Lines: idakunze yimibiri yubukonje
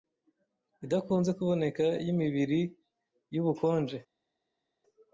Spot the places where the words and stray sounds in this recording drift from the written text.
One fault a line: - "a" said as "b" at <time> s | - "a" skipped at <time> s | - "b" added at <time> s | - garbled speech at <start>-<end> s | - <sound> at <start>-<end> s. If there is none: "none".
- "kuboneka" added at 1.4 s